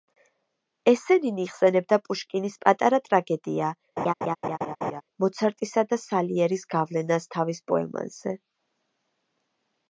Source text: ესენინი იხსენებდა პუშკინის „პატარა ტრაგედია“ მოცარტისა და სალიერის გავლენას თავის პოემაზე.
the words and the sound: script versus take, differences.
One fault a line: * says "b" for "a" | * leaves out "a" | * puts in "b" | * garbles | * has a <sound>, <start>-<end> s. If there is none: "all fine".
* has a laugh, 4.0-5.0 s